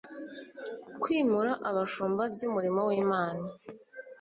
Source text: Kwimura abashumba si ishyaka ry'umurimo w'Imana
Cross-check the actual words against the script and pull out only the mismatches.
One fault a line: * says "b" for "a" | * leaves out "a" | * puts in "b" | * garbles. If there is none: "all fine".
* leaves out "si ishyaka"